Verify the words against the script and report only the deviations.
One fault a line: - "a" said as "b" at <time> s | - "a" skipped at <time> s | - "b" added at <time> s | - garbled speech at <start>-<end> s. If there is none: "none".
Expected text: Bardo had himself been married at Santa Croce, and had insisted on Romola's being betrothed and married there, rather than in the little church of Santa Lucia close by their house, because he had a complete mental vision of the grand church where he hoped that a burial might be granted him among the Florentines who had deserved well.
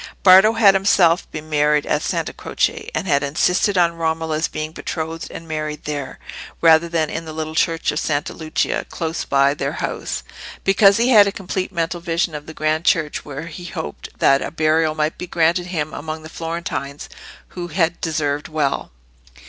none